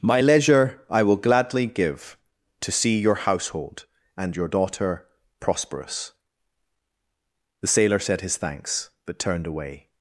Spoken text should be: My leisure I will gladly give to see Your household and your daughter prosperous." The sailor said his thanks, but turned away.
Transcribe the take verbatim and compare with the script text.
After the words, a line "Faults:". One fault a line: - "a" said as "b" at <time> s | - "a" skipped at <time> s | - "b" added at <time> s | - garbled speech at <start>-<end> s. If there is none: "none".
My leisure I will gladly give to see Your household and your daughter prosperous." The sailor said his thanks, but turned away.
Faults:
none